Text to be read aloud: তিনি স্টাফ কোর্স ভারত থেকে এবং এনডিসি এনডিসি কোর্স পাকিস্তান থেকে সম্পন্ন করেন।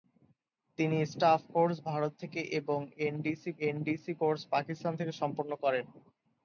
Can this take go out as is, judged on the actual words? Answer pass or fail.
pass